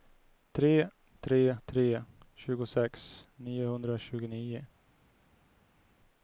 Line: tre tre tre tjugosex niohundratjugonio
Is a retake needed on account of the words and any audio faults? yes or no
no